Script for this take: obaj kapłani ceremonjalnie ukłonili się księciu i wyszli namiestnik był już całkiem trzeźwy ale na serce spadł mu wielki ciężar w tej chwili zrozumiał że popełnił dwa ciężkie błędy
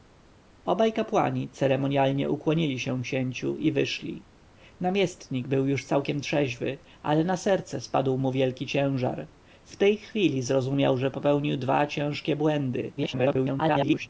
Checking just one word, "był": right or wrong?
right